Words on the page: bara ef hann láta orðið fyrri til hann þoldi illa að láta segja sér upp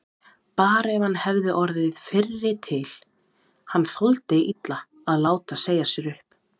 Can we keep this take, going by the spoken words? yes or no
no